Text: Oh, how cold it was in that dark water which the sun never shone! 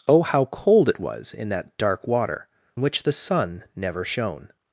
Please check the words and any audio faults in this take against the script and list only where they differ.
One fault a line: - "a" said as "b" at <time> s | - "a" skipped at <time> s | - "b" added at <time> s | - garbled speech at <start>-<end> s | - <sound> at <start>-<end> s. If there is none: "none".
none